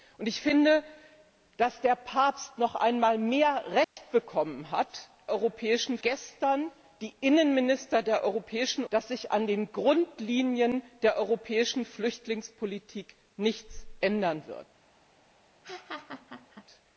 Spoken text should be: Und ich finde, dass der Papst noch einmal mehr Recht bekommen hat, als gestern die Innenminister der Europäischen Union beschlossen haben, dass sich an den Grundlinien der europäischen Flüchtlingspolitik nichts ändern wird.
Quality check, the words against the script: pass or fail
fail